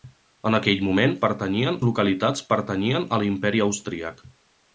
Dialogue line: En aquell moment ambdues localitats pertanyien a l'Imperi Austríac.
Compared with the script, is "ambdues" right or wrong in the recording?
wrong